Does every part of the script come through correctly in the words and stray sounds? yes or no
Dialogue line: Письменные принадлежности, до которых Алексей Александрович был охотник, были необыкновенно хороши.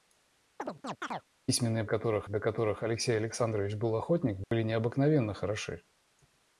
no